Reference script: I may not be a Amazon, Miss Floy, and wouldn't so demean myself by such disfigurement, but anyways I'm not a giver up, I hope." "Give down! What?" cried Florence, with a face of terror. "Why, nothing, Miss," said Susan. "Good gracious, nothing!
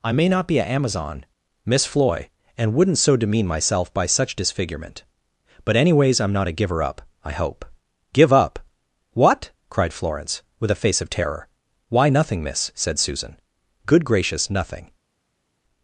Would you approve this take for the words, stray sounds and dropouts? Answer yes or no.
no